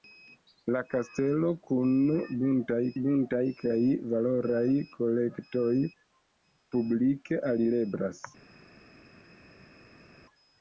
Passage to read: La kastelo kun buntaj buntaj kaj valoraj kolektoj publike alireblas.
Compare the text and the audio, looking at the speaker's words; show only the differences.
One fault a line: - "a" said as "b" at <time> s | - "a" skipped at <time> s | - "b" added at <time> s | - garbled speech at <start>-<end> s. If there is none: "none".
none